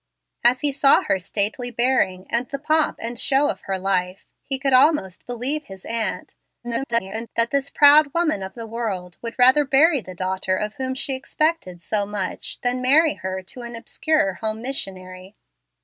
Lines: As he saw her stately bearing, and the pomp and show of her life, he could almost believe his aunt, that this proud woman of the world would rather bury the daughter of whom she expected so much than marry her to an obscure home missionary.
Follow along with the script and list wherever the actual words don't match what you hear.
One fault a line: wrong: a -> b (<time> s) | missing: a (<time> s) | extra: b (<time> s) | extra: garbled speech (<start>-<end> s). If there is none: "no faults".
extra: garbled speech (6.6-7.3 s)